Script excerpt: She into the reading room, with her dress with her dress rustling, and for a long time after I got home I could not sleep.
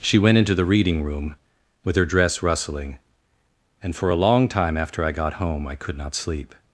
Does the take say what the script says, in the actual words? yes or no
no